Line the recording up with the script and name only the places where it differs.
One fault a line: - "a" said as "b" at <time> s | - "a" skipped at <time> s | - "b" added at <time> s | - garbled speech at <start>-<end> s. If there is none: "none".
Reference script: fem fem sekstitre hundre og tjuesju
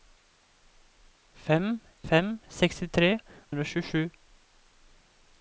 none